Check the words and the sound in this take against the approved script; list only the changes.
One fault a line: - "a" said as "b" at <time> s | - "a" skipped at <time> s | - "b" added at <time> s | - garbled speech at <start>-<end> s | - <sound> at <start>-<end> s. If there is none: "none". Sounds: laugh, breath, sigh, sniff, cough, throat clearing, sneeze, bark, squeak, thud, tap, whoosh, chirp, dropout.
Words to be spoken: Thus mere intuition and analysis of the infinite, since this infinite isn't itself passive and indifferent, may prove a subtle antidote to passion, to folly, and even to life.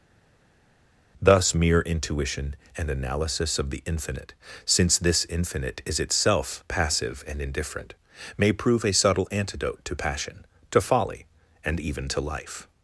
- "isn't" said as "is" at 5.9 s